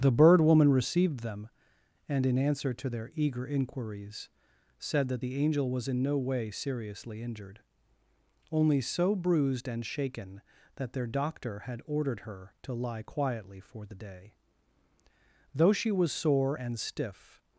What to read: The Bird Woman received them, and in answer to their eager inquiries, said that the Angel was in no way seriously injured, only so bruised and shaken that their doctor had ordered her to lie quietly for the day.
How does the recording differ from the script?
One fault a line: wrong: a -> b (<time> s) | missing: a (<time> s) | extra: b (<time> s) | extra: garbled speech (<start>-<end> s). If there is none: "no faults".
extra: Though she was sore and stiff (15.5 s)